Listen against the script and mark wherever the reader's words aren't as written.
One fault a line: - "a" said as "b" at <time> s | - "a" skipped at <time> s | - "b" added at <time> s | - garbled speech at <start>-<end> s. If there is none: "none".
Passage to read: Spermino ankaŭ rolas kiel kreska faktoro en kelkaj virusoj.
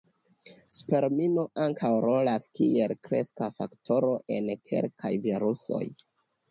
none